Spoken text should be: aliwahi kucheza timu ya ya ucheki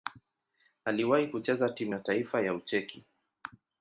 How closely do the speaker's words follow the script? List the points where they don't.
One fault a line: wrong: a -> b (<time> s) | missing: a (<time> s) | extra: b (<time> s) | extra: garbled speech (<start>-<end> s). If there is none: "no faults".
extra: taifa (2.0 s)